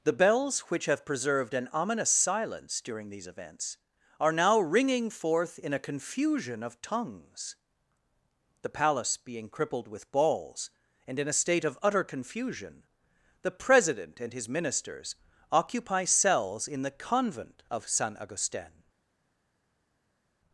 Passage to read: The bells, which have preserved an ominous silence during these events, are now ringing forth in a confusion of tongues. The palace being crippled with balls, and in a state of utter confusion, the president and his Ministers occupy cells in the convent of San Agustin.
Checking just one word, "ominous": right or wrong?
right